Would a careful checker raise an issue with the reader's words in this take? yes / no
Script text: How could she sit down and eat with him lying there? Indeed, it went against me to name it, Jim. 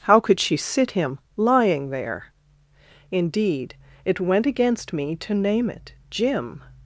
yes